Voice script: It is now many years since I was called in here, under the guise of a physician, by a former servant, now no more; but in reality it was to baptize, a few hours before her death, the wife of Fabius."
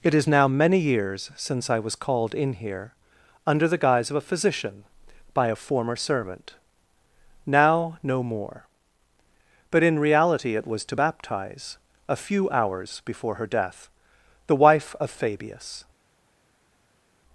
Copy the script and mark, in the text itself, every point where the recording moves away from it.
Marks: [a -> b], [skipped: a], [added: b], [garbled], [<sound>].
It is now many years since I was called in here, under the guise of a physician, by a former servant, now no more; but in reality it was to baptize, a few hours before her death, the wife of Fabius."